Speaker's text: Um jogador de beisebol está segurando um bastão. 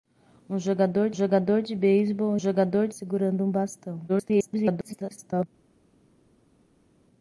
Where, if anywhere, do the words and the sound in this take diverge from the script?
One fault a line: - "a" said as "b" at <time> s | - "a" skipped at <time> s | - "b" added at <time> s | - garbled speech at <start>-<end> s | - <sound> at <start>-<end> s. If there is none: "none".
- "jogador" added at 1.1 s
- "está" said as "jogador" at 2.4 s
- garbled speech at 4.1-5.5 s